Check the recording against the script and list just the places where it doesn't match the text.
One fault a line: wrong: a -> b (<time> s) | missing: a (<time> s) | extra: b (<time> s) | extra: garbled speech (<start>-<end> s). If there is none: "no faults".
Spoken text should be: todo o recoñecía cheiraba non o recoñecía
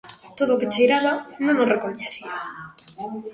wrong: recoñecía -> que (0.6 s)